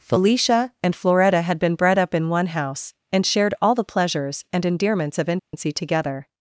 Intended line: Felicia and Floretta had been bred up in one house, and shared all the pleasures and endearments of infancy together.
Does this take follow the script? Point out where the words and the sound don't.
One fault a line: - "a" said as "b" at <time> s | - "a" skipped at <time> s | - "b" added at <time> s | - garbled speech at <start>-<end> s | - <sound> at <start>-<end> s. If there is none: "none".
- dropout at 5.4-5.5 s